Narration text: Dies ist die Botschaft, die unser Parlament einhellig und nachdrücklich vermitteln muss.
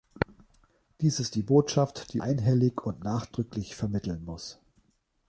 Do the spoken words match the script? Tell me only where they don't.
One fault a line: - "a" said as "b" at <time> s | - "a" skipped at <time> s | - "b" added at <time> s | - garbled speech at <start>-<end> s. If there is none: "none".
- "unser Parlament" skipped at 2.2 s